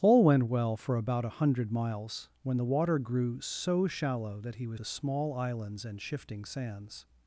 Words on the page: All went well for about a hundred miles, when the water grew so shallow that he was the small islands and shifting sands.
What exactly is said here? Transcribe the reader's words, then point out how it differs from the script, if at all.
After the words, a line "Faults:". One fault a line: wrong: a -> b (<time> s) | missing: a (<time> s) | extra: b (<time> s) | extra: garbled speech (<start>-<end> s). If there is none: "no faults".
All went well for about a hundred miles, when the water grew so shallow that he was the small islands and shifting sands.
Faults:
no faults